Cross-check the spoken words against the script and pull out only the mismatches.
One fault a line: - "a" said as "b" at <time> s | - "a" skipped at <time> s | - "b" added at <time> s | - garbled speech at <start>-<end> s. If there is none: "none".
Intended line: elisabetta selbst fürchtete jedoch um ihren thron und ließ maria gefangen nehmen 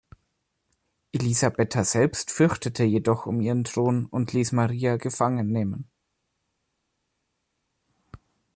none